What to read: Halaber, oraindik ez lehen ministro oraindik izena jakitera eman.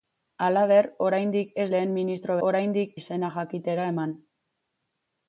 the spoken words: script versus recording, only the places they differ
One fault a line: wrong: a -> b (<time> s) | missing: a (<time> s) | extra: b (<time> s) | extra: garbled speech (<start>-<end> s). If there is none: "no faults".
no faults